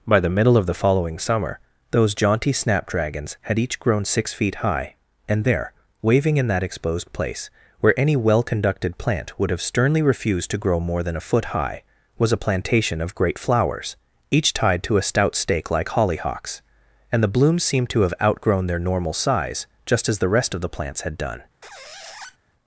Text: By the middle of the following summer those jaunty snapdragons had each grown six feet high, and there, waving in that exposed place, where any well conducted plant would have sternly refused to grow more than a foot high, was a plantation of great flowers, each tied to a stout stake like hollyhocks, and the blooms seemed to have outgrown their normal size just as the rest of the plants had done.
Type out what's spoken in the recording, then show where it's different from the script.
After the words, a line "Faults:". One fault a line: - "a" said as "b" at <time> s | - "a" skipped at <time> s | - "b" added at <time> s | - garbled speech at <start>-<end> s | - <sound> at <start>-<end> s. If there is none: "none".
By the middle of the following summer those jaunty snapdragons had each grown six feet high, and there, waving in that exposed place, where any well conducted plant would have sternly refused to grow more than a foot high, was a plantation of great flowers, each tied to a stout stake like hollyhocks, and the blooms seemed to have outgrown their normal size just as the rest of the plants had done.
Faults:
- squeak at 21.6-22.4 s